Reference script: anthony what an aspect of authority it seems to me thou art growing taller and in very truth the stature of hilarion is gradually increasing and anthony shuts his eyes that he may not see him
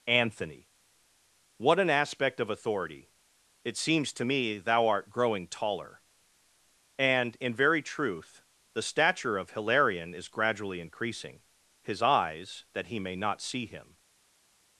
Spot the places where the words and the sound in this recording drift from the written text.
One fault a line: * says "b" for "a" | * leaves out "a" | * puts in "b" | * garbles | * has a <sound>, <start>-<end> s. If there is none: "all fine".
* leaves out "and anthony shuts"